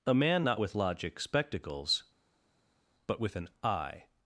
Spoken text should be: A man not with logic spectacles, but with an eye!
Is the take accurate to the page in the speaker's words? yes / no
yes